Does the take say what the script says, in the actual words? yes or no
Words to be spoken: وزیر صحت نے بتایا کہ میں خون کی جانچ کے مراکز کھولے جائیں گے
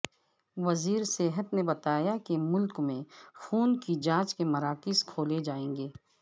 no